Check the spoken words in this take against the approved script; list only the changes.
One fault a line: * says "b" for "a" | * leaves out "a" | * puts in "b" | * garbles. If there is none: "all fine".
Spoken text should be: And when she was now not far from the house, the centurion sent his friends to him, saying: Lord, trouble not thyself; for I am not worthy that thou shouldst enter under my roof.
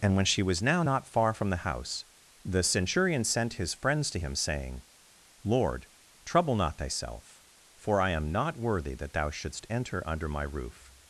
all fine